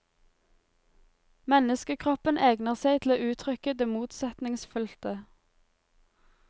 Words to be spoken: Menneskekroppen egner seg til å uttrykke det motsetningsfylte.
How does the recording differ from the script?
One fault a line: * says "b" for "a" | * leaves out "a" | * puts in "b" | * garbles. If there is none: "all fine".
all fine